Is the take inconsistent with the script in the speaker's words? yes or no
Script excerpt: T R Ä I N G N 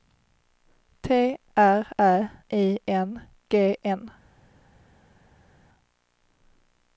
no